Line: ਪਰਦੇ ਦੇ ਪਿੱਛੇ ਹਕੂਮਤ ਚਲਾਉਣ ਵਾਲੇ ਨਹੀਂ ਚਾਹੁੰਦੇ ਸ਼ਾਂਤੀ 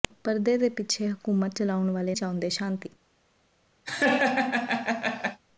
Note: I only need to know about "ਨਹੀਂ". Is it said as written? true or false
false